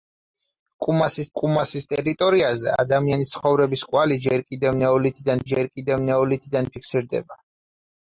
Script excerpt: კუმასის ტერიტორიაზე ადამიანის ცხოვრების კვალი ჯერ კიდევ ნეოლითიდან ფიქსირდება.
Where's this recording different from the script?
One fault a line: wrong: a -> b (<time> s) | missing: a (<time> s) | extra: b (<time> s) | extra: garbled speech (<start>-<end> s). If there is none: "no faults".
extra: კუმასის (1.4 s)
extra: ჯერ კიდევ ნეოლითიდან (5.5 s)